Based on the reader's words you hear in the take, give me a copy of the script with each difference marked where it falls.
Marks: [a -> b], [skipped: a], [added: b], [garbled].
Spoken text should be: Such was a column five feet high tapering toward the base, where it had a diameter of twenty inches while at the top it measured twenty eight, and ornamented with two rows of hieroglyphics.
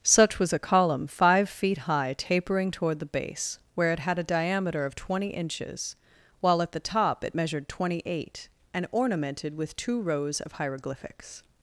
Such was a column five feet high tapering toward the base, where it had a diameter of twenty inches while at the top it measured twenty eight, and ornamented with two rows of hieroglyphics.